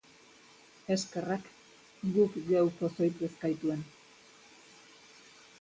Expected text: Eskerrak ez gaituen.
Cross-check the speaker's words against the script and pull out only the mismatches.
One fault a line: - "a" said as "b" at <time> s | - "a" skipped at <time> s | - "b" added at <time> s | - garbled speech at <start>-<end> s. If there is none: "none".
- "guk geu pozoitu" added at 2.2 s